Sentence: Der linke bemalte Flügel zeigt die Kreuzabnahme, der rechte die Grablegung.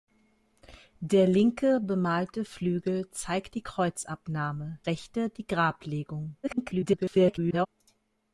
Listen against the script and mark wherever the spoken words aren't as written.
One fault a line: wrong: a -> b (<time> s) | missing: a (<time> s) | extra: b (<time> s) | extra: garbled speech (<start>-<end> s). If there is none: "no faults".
missing: der (4.8 s)
extra: garbled speech (6.4-7.7 s)